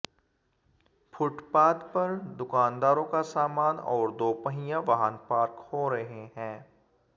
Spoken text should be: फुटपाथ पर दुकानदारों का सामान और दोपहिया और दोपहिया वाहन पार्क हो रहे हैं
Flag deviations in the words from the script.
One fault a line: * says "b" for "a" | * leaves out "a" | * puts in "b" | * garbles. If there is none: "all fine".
* leaves out "और दोपहिया"